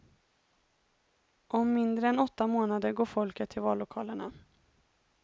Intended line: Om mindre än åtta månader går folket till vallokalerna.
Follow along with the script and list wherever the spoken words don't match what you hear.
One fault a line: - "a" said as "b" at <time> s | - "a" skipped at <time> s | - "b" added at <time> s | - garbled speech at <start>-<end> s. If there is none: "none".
none